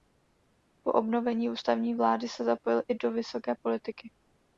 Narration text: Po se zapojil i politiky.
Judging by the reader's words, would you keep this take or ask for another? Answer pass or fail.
fail